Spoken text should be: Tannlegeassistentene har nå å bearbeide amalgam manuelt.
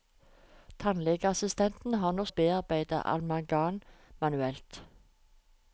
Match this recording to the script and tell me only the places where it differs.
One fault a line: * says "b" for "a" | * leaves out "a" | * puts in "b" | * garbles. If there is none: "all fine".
all fine